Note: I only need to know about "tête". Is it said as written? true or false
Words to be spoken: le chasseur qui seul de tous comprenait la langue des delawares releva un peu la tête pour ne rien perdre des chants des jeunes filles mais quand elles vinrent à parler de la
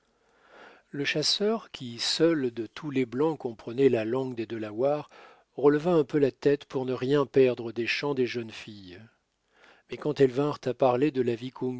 true